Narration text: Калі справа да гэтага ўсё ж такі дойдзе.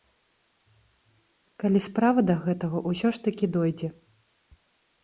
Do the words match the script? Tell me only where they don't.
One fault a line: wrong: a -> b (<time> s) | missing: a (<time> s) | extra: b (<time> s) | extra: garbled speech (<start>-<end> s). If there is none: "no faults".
no faults